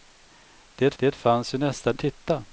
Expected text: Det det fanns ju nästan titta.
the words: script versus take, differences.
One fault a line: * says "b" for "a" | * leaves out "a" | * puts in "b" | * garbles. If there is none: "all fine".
all fine